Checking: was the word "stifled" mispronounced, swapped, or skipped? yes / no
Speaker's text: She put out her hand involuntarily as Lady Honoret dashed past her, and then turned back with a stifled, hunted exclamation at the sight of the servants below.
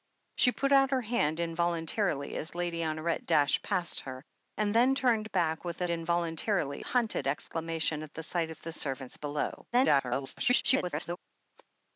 yes